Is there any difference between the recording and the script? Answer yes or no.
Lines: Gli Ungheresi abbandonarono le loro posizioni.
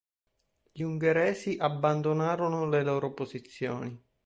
no